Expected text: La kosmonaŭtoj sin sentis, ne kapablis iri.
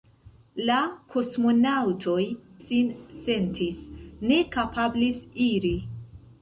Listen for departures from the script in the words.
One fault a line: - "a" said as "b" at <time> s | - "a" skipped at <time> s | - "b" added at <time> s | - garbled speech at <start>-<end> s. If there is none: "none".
none